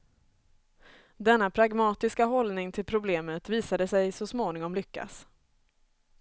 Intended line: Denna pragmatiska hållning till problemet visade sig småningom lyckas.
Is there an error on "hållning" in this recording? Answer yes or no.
no